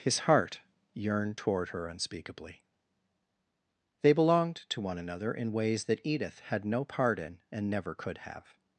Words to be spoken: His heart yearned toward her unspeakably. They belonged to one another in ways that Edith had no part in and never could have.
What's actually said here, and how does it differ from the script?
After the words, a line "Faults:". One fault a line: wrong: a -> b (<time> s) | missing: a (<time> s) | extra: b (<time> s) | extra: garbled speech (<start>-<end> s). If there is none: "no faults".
His heart yearned toward her unspeakably. They belonged to one another in ways that Edith had no part in and never could have.
Faults:
no faults